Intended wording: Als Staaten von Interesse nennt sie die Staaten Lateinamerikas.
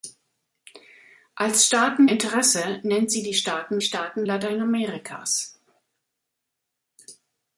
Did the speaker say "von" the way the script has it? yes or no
no